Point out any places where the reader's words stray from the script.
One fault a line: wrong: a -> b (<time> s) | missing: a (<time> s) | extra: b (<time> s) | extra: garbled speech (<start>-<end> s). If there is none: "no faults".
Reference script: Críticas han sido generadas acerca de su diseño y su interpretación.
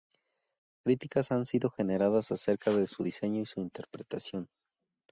no faults